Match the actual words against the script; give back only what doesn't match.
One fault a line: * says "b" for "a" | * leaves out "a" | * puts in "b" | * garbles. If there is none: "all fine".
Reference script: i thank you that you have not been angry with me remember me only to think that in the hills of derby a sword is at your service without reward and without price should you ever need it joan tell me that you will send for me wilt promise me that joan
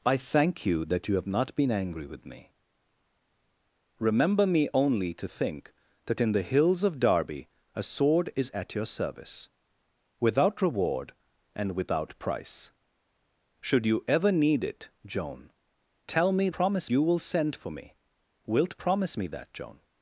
* says "promise" for "that"